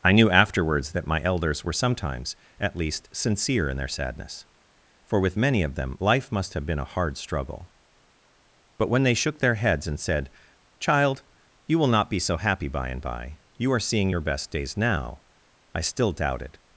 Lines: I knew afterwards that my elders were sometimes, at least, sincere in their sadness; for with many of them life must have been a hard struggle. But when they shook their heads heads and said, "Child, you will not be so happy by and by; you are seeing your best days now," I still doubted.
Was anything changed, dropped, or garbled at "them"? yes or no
no